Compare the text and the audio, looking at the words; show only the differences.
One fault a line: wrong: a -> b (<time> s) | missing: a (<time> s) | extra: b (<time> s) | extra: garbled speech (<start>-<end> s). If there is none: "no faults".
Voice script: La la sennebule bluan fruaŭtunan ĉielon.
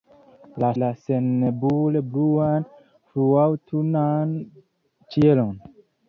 no faults